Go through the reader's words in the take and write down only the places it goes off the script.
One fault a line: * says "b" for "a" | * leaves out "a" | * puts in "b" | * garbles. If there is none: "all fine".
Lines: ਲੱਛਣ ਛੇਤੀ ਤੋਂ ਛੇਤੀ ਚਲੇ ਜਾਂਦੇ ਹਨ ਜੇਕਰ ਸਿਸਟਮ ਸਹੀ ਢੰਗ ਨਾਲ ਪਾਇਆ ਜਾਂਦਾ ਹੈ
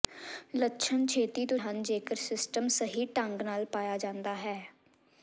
* leaves out "ਛੇਤੀ ਚਲੇ ਜਾਂਦੇ"